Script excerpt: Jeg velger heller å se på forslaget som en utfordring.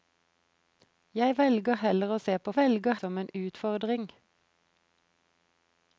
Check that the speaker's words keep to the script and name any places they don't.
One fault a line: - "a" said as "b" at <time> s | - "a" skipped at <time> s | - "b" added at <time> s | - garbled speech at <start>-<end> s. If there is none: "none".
- "forslaget" said as "velger" at 2.6 s